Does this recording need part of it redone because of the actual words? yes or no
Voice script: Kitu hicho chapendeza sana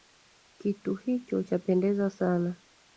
no